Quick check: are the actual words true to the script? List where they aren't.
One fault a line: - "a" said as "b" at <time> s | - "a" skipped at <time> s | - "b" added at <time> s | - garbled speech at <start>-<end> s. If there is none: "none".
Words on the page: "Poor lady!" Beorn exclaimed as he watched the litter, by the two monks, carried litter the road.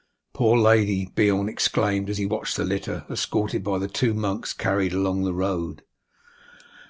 - "escorted" added at 3.1 s
- "litter" said as "along" at 4.9 s